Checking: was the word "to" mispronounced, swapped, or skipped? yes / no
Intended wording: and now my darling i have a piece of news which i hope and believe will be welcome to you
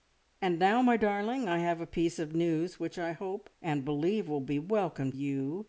yes